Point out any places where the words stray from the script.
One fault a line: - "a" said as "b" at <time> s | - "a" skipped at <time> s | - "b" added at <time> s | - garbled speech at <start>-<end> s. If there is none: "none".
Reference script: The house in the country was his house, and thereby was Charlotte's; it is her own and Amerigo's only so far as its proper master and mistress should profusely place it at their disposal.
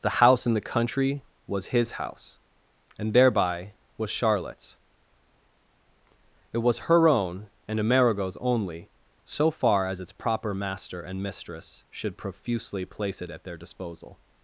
- "is" said as "was" at 6.6 s